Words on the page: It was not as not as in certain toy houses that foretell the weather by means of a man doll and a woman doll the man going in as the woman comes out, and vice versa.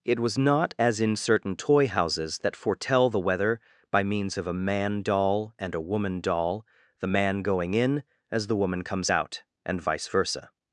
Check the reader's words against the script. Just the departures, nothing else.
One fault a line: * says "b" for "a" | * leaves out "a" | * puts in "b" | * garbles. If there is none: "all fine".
* leaves out "not as"